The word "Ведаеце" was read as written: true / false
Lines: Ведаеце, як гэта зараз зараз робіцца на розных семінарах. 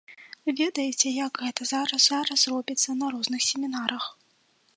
true